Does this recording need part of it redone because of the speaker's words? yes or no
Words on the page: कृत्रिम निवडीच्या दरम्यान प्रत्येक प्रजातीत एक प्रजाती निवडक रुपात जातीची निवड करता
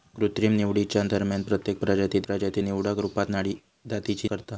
yes